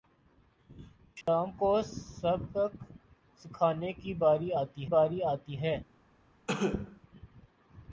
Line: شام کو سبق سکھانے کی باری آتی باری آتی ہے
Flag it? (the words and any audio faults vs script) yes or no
yes